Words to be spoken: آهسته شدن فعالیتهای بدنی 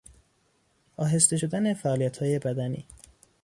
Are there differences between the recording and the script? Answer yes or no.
no